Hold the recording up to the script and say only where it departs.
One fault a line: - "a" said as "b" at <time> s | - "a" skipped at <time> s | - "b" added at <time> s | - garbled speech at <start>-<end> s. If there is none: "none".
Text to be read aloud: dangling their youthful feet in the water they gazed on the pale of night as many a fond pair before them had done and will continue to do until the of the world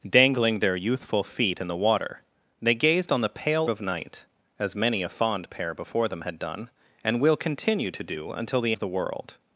none